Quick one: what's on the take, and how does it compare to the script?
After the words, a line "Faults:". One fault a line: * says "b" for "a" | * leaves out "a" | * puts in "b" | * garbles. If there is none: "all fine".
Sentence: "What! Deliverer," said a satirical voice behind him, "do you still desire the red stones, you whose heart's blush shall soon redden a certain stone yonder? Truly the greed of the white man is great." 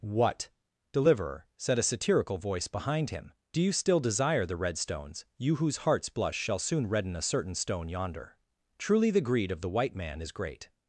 "What! Deliverer," said a satirical voice behind him, "do you still desire the red stones, you whose heart's blush shall soon redden a certain stone yonder? Truly the greed of the white man is great."
Faults:
all fine